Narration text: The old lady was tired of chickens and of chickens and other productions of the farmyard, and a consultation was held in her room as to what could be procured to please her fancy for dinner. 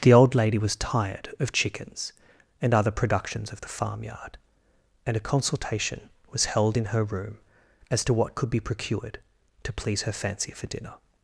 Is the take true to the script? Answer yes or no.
no